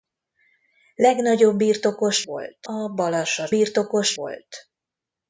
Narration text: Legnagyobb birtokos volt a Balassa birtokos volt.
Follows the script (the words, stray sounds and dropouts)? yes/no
yes